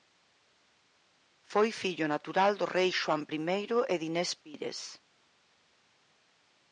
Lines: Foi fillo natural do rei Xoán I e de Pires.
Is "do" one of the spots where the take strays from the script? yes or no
no